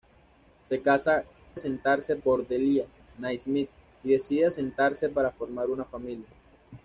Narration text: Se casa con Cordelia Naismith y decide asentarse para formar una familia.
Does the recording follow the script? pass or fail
fail